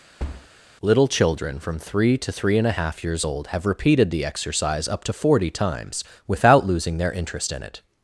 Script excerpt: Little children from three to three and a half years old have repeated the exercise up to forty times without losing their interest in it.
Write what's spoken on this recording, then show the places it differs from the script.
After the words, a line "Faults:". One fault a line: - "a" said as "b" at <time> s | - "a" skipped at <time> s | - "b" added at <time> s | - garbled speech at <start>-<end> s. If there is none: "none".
Little children from three to three and a half years old have repeated the exercise up to forty times without losing their interest in it.
Faults:
none